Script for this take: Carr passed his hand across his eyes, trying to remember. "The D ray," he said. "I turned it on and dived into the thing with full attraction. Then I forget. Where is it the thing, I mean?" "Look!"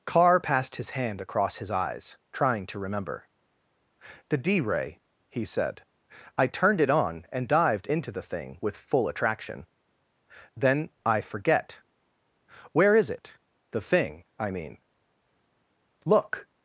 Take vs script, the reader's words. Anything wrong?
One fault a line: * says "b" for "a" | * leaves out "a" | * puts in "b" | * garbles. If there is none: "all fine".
all fine